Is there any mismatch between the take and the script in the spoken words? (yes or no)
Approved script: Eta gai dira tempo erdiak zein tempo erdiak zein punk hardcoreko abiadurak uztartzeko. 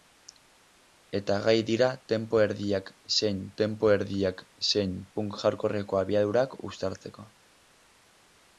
no